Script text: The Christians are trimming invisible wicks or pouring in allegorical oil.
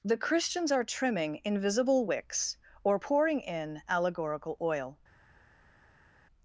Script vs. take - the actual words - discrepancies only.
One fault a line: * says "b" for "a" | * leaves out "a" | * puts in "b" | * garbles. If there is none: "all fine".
all fine